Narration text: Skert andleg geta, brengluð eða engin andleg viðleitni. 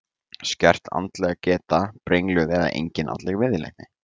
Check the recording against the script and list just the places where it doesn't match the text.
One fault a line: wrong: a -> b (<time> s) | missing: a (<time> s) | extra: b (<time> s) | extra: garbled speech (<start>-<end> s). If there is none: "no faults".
no faults